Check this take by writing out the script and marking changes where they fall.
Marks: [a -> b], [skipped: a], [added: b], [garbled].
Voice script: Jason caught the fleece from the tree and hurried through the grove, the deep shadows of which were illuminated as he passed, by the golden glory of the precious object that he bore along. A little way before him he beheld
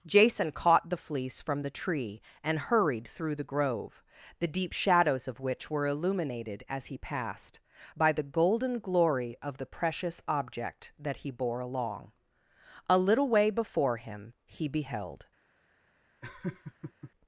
Jason caught the fleece from the tree and hurried through the grove, the deep shadows of which were illuminated as he passed, by the golden glory of the precious object that he bore along. A little way before him he beheld